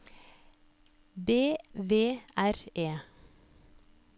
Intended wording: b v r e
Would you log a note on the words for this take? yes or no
no